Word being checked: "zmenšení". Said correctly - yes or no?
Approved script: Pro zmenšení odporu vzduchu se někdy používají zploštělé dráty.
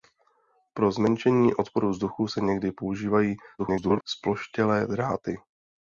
yes